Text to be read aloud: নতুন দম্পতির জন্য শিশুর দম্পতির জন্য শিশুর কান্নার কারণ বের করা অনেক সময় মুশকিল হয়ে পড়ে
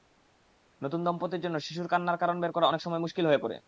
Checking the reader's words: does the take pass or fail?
fail